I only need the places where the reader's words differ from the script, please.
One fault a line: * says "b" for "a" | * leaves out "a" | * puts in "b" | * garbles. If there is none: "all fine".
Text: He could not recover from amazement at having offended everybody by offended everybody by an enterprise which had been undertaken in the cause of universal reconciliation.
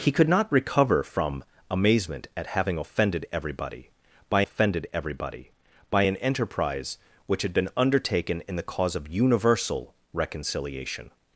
all fine